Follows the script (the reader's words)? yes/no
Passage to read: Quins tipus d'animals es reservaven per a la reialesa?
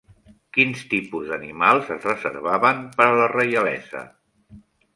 yes